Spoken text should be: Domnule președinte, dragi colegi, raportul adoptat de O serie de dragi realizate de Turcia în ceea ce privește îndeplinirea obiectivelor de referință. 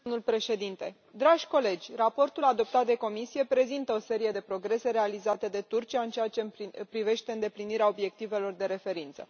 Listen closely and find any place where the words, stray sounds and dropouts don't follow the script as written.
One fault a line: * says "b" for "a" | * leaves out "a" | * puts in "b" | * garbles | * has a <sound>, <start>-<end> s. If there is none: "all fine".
* puts in "Comisie prezintă"
* says "progrese" for "dragi"